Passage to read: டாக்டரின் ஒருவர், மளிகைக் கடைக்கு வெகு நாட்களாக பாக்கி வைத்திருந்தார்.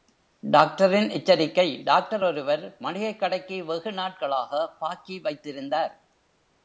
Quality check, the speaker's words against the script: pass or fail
fail